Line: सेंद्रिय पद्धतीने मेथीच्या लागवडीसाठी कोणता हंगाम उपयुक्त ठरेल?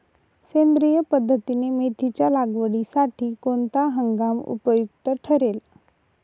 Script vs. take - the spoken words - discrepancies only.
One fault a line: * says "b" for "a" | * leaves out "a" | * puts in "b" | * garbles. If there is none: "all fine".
all fine